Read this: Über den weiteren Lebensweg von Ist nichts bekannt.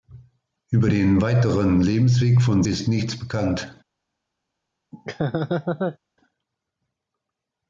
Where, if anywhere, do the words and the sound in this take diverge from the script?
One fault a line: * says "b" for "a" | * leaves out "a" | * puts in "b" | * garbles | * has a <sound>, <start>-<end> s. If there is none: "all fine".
* has a laugh, 4.9-6.0 s